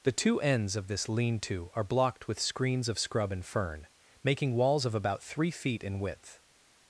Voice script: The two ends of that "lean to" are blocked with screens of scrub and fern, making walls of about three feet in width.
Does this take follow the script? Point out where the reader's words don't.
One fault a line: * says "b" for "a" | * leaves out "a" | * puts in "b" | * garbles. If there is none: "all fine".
* says "this" for "that"